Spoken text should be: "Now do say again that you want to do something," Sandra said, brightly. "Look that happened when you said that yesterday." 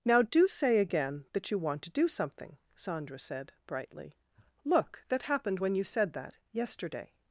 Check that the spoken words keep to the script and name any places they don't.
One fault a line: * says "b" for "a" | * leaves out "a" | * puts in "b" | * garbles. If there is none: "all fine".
all fine